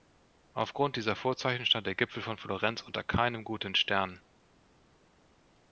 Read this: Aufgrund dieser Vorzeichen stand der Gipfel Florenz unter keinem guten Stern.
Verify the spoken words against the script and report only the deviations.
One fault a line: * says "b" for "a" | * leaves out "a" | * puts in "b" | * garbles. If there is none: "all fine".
* puts in "von"